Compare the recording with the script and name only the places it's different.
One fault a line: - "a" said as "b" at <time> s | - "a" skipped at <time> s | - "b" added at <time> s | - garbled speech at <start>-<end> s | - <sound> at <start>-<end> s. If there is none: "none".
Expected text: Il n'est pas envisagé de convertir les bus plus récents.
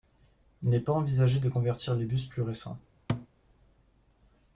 - thud at 3.1-3.3 s